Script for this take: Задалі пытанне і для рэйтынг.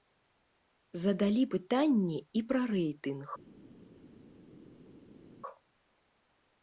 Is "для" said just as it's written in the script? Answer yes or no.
no